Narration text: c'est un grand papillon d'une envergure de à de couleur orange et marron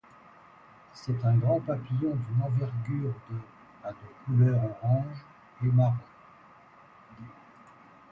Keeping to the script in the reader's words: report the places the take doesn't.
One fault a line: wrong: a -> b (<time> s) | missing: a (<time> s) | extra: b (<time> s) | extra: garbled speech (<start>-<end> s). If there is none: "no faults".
no faults